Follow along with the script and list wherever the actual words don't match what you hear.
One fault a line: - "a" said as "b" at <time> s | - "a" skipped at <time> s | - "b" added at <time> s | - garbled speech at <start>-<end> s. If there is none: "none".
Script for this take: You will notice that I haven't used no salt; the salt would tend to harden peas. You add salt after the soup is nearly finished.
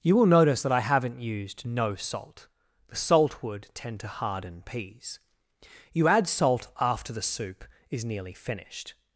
none